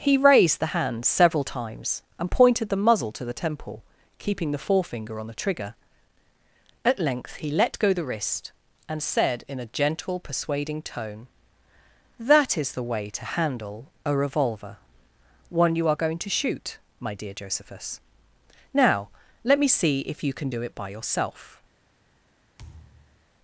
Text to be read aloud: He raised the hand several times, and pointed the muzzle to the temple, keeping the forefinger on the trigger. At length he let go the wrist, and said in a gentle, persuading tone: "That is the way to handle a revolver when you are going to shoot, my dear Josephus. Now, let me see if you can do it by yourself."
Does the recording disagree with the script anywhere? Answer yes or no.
yes